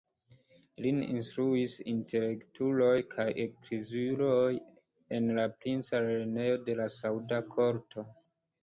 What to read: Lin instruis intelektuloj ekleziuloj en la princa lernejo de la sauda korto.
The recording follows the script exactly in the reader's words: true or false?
false